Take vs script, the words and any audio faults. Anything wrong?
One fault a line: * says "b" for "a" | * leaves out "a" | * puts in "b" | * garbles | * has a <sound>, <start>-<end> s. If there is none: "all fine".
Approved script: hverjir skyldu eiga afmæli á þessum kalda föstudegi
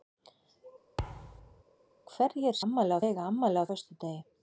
* has a thud, 1.0-1.6 s
* says "afmæli" for "skyldu"
* leaves out "þessum kalda"